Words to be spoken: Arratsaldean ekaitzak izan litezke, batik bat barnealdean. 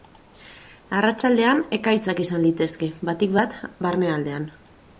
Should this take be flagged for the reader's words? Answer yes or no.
no